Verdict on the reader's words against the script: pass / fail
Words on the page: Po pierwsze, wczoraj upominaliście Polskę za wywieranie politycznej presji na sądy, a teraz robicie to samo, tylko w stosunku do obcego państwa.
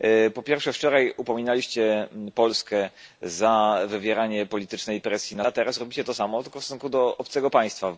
fail